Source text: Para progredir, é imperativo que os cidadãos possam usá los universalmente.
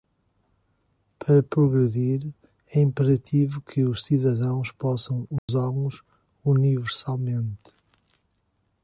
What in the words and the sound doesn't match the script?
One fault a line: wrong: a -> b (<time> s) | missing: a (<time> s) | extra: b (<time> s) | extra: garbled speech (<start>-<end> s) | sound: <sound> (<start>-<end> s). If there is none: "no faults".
sound: dropout (5.4-5.5 s)